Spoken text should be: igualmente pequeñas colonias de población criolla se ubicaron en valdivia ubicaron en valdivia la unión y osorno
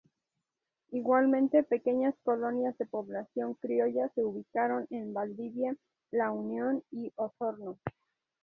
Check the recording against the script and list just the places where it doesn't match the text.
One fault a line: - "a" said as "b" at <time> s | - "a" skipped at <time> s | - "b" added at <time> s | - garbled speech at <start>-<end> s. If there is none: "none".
- "ubicaron en valdivia" skipped at 5.7 s